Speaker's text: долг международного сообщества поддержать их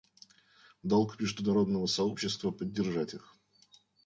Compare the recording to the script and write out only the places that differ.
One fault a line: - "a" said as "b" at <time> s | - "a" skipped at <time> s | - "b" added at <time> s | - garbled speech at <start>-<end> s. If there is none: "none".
none